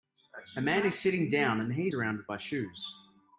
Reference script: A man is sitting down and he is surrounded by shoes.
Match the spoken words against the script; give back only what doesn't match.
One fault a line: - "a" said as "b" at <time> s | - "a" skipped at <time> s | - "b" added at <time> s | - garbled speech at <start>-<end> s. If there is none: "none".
- "is" skipped at 1.9 s